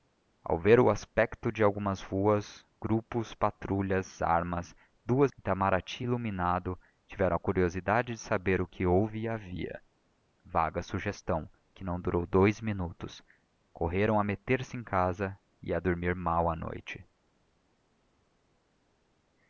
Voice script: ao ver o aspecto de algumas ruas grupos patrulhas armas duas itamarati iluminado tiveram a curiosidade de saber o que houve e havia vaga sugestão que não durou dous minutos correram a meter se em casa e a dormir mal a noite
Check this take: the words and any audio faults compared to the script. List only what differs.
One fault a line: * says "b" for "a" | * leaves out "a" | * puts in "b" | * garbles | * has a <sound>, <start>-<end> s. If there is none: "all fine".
all fine